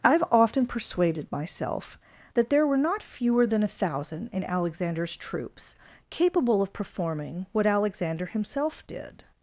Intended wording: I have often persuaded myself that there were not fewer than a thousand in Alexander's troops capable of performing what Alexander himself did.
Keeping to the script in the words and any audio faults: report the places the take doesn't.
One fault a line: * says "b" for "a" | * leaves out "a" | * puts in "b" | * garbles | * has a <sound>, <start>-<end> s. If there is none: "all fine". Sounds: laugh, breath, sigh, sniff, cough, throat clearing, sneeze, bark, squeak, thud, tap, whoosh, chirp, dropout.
all fine